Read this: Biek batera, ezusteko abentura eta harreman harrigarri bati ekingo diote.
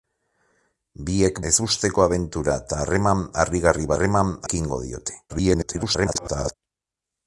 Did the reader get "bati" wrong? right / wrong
wrong